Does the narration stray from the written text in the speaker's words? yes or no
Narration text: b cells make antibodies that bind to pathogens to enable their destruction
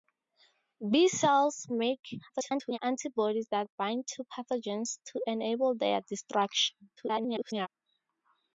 yes